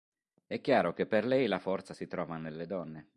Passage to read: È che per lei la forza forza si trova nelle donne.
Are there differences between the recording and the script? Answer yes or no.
yes